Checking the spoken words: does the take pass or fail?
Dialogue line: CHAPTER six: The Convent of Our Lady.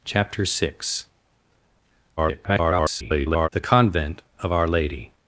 fail